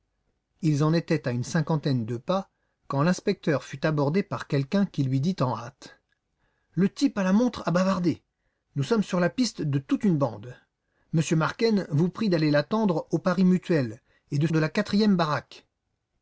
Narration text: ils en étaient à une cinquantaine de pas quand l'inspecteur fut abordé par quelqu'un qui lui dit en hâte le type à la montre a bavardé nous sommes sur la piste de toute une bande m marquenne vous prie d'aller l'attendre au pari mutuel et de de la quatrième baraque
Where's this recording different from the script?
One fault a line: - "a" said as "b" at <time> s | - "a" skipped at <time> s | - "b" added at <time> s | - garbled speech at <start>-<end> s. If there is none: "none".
none